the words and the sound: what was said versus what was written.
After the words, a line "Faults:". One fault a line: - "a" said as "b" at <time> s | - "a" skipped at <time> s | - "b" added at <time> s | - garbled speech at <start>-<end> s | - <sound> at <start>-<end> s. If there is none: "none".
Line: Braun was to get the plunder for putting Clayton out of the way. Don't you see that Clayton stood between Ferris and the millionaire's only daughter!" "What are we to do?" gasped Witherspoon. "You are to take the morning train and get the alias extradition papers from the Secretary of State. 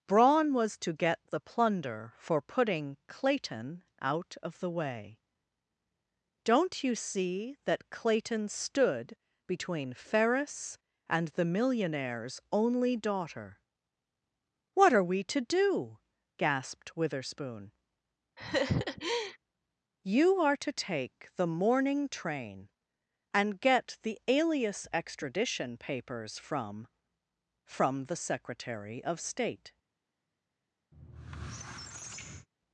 Braun was to get the plunder for putting Clayton out of the way. Don't you see that Clayton stood between Ferris and the millionaire's only daughter!" "What are we to do?" gasped Witherspoon. "You are to take the morning train and get the alias extradition papers from from the Secretary of State.
Faults:
- laugh at 18.4-19.4 s
- "from" added at 27.7 s
- squeak at 30.9-32.5 s